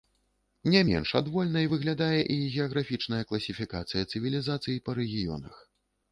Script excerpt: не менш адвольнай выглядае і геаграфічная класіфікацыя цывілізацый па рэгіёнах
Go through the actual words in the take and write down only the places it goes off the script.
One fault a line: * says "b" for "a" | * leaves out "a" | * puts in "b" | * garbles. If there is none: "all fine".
all fine